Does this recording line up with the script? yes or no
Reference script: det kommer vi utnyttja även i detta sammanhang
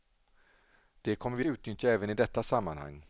yes